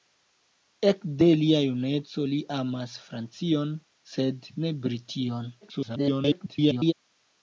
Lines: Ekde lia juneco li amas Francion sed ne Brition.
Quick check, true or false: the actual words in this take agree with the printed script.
false